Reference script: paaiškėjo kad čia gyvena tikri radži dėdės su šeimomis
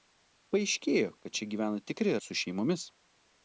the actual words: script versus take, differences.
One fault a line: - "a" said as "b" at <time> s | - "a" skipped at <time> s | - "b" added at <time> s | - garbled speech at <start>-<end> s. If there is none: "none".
- "radži dėdės" skipped at 2.2 s